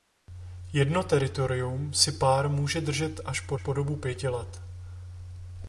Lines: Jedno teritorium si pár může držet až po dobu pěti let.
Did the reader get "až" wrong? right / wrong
right